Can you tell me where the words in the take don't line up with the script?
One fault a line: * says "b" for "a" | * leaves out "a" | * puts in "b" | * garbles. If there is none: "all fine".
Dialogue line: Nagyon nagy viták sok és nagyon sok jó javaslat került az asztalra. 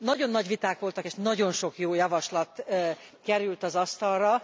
* says "voltak" for "sok"